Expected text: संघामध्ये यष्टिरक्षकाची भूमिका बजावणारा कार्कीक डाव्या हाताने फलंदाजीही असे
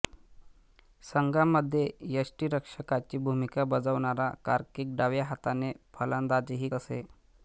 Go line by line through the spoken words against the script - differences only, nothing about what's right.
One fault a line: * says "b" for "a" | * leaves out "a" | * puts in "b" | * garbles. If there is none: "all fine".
all fine